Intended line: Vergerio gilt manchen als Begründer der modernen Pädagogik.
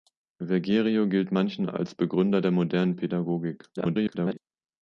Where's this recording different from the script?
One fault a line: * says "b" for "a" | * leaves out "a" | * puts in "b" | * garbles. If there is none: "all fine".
* garbles